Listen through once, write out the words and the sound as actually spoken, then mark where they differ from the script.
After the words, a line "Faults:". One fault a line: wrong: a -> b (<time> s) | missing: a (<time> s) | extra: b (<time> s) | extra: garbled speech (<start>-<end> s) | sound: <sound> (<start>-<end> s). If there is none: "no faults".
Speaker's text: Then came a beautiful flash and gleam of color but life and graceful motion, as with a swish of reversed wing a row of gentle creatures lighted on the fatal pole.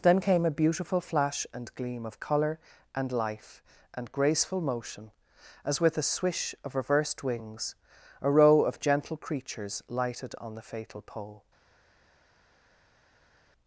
Then came a beautiful flash and gleam of color and life and graceful motion, as with a swish of reversed wings a row of gentle creatures lighted on the fatal pole.
Faults:
wrong: but -> and (2.9 s)
wrong: wing -> wings (7.2 s)